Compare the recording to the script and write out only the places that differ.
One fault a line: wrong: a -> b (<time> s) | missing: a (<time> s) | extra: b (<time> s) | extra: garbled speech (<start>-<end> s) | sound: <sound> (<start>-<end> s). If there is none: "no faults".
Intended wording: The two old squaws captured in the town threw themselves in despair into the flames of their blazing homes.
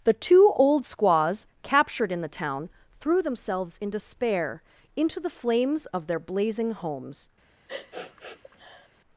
sound: sniff (7.7-8.9 s)